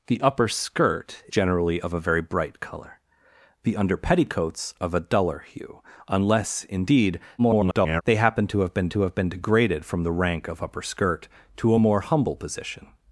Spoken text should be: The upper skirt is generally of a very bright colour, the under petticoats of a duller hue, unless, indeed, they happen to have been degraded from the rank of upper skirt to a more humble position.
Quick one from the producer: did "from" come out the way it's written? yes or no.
yes